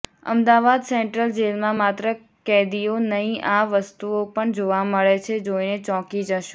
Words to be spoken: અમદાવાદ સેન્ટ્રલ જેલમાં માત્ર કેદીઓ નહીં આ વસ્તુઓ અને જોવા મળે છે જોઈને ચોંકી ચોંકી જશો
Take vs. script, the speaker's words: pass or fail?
fail